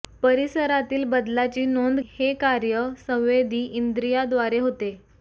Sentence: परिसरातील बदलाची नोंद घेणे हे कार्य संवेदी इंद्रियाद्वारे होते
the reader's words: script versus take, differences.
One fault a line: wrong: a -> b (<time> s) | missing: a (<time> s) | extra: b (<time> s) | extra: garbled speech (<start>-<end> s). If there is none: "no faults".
missing: घेणे (2.0 s)